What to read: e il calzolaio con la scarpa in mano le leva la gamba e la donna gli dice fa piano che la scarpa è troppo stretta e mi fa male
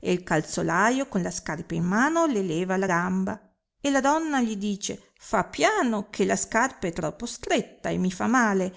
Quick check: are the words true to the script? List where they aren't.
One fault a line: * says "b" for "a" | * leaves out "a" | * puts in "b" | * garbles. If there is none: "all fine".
all fine